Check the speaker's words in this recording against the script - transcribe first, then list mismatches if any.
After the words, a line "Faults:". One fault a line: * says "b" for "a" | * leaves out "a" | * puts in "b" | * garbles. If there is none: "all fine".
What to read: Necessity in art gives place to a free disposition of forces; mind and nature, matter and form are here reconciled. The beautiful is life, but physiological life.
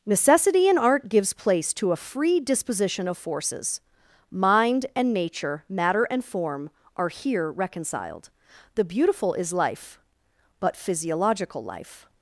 Necessity in art gives place to a free disposition of forces; mind and nature, matter and form are here reconciled. The beautiful is life, but physiological life.
Faults:
all fine